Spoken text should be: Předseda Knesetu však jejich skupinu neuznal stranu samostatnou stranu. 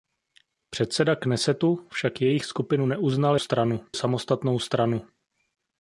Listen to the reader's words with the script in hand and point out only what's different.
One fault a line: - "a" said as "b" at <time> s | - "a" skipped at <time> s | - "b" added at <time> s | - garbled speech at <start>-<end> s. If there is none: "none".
none